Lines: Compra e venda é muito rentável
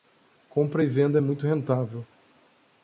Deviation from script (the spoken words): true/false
false